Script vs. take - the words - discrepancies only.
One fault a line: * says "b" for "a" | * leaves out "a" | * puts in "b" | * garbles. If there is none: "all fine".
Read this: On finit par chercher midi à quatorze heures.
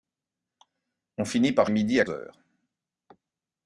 * leaves out "chercher"
* leaves out "quatorze"